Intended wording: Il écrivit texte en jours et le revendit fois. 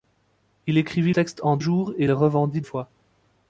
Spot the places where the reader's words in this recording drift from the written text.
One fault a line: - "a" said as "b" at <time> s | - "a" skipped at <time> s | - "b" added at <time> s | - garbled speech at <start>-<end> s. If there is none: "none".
none